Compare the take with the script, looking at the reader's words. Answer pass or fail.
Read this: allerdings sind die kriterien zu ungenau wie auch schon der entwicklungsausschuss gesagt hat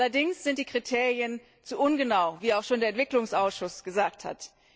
pass